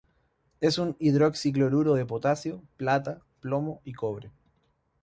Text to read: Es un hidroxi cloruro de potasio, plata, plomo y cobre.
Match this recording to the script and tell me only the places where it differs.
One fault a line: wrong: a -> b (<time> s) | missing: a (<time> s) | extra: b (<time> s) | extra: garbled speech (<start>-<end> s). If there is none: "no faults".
no faults